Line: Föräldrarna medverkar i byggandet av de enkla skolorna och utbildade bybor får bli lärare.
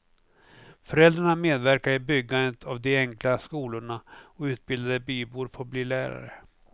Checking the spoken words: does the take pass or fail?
pass